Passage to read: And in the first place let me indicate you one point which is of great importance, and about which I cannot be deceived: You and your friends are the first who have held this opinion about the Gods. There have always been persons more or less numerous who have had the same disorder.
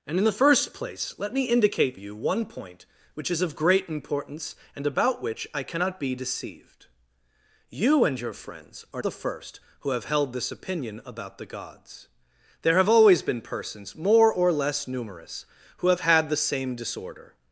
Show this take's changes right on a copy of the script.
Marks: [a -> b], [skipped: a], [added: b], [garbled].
And in the first place let me indicate you one point which is of great importance, and about which I cannot be deceived: You and your friends are the first who have held this opinion about the Gods. There have always been persons more or less numerous who have had the same disorder.